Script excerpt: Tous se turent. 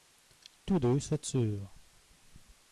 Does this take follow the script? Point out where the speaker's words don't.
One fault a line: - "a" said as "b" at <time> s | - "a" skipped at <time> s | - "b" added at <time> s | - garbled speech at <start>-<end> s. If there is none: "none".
- "deux" added at 0.8 s